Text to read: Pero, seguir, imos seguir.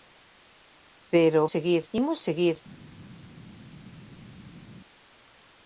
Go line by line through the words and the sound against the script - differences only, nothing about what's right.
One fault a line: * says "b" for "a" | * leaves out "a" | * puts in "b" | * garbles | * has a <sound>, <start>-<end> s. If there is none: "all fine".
all fine